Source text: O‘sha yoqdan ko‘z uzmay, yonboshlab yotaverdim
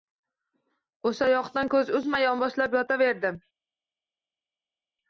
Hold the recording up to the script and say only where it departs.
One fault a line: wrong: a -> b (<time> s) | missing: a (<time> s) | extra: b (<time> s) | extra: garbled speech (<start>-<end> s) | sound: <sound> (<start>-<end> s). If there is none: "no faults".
no faults